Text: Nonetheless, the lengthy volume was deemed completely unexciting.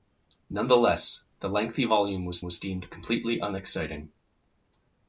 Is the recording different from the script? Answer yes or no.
yes